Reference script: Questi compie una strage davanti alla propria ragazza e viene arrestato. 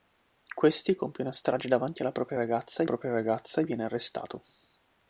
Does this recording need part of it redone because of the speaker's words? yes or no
yes